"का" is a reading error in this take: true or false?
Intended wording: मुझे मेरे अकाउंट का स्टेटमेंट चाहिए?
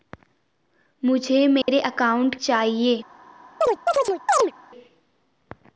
true